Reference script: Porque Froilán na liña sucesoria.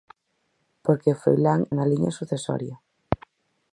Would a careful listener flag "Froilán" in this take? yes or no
no